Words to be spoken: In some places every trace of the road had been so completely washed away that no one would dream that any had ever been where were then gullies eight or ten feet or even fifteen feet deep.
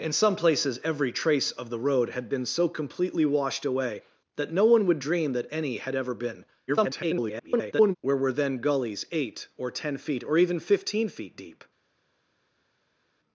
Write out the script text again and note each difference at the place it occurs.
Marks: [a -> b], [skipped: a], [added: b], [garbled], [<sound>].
In some places every trace of the road had been so completely washed away that no one would dream that any had ever been [garbled] where were then gullies eight or ten feet or even fifteen feet deep.